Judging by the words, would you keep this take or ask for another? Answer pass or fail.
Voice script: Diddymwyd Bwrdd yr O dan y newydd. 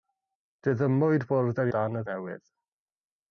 pass